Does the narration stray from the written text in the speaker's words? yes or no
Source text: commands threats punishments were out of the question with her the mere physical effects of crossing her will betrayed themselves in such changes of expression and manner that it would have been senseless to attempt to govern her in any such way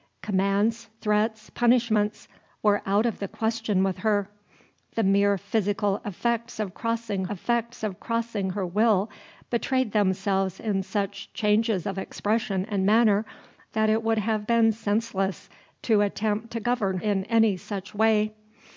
yes